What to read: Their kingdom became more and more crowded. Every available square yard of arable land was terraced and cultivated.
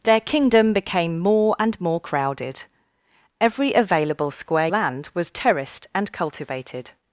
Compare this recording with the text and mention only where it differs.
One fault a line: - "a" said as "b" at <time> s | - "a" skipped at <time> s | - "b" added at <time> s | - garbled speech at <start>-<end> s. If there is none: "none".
- "yard of arable" skipped at 4.7 s